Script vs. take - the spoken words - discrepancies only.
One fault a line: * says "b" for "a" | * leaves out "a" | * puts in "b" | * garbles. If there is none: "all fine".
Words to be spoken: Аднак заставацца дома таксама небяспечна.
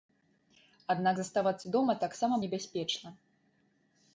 all fine